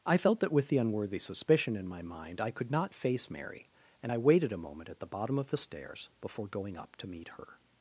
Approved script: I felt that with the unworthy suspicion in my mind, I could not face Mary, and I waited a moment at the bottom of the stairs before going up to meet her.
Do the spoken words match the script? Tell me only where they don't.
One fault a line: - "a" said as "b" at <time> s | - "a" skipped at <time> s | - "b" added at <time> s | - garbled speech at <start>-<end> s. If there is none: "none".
none